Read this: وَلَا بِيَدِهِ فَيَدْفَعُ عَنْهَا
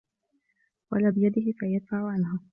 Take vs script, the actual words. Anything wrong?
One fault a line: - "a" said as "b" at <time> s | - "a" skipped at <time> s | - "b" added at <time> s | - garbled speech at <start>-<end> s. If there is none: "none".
none